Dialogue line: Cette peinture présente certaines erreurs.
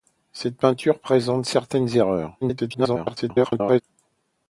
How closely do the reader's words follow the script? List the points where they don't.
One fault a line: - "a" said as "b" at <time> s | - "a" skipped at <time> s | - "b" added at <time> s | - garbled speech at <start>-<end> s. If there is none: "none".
- garbled speech at 2.4-3.8 s